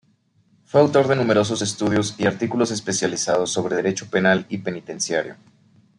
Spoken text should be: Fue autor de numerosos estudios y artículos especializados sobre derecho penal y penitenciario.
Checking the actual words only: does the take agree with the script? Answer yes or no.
yes